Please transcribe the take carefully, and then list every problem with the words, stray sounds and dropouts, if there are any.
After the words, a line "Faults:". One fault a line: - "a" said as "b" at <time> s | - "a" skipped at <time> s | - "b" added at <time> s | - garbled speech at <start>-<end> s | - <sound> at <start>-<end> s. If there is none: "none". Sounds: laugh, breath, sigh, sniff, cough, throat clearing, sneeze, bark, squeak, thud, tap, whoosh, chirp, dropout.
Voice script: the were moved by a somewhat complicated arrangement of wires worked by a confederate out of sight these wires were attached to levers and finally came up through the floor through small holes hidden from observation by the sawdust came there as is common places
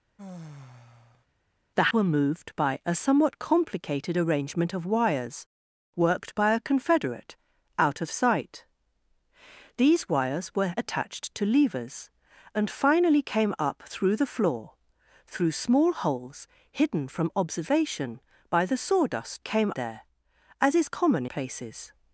the were moved by a somewhat complicated arrangement of wires worked by a confederate out of sight these wires were attached to levers and finally came up through the floor through small holes hidden from observation by the sawdust came there as is common places
Faults:
- sigh at 0.2-1.3 s